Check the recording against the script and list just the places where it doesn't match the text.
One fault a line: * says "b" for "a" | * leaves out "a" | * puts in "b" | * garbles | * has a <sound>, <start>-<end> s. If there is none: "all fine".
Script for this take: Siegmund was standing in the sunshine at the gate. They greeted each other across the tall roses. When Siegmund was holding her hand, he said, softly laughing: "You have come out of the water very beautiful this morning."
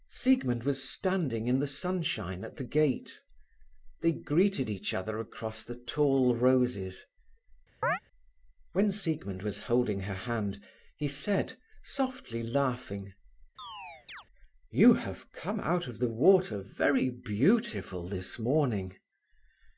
* has a chirp, 7.8-8.0 s
* has a chirp, 13.6-14.2 s